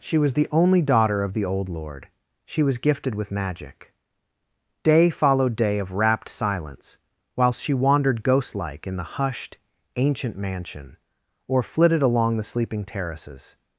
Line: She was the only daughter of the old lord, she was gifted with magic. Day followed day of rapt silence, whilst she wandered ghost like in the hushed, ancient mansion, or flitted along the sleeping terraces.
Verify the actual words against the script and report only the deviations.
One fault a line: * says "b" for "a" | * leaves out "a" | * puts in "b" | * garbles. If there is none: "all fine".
all fine